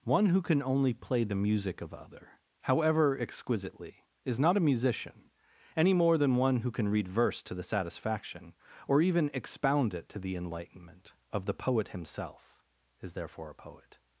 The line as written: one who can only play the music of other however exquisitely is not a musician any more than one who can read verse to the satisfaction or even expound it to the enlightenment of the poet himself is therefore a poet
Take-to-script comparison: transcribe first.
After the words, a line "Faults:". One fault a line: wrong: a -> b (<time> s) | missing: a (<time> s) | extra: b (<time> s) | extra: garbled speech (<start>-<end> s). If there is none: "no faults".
one who can only play the music of other however exquisitely is not a musician any more than one who can read verse to the satisfaction or even expound it to the enlightenment of the poet himself is therefore a poet
Faults:
no faults